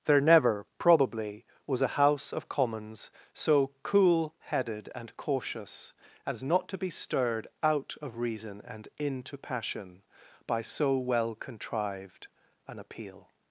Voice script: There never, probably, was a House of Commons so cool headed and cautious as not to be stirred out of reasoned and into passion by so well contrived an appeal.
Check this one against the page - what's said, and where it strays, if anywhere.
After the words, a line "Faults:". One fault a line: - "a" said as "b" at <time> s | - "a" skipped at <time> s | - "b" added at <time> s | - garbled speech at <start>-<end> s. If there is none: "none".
There never, probably, was a House of Commons so cool headed and cautious as not to be stirred out of reason and into passion by so well contrived an appeal.
Faults:
- "reasoned" said as "reason" at 8.2 s